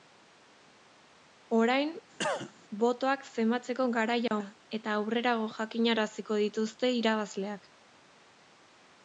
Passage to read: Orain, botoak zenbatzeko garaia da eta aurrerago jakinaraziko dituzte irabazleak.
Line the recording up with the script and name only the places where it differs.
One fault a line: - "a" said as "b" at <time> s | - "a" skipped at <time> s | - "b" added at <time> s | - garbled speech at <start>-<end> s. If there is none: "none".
none